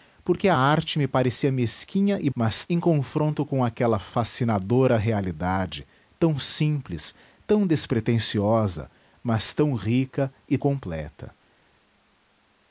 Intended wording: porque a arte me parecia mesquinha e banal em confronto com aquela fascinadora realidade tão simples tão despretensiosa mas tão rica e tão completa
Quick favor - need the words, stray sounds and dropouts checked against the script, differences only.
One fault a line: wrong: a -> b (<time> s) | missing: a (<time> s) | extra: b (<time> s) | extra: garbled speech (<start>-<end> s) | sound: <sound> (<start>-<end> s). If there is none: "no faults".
wrong: banal -> mas (2.3 s)
missing: tão (10.6 s)